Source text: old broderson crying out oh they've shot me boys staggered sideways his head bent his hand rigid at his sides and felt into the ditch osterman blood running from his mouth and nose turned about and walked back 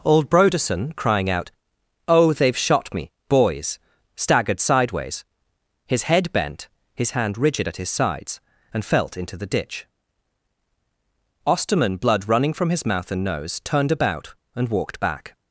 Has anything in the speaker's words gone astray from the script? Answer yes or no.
no